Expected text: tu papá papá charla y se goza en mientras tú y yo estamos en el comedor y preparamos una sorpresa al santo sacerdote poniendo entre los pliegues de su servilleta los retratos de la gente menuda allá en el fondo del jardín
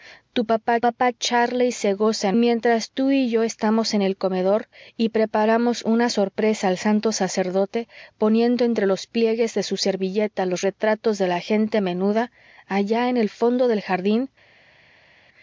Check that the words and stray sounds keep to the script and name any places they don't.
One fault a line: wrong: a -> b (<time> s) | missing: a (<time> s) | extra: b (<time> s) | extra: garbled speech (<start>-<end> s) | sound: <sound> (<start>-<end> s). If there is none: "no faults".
no faults